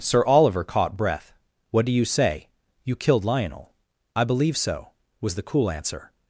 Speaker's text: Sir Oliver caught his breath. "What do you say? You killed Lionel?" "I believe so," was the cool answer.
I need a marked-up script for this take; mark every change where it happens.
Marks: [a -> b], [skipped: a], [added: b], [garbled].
Sir Oliver caught [skipped: his] breath. "What do you say? You killed Lionel?" "I believe so," was the cool answer.